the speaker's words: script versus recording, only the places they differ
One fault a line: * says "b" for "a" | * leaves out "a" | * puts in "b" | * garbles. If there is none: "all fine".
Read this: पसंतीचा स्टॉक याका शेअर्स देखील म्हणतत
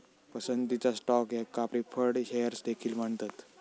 * puts in "प्रीफर्ड"